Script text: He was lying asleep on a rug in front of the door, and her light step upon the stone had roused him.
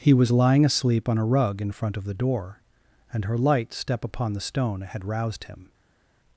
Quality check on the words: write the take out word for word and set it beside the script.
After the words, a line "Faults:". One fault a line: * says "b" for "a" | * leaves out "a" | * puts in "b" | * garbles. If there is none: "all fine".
He was lying asleep on a rug in front of the door, and her light step upon the stone had roused him.
Faults:
all fine